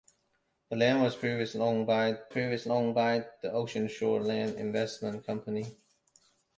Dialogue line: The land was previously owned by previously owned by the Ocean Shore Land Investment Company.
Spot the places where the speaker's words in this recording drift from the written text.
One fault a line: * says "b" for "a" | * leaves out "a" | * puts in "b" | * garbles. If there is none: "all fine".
all fine